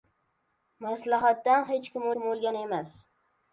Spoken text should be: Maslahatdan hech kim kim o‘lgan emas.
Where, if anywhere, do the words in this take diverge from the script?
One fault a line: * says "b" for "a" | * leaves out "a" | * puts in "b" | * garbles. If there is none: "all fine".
all fine